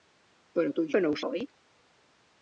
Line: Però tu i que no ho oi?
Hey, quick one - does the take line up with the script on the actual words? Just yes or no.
yes